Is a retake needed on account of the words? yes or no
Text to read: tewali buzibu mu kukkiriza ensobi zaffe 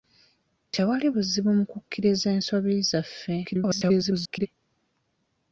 yes